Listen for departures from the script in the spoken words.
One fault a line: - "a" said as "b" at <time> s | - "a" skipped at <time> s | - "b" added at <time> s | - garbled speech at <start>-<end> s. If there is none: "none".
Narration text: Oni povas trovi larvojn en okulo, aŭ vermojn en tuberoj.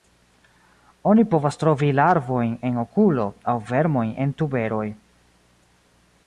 none